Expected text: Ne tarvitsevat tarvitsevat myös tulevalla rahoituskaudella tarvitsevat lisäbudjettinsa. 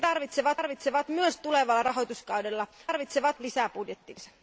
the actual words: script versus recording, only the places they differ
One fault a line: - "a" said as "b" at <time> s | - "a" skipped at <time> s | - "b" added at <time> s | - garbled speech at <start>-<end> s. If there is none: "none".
none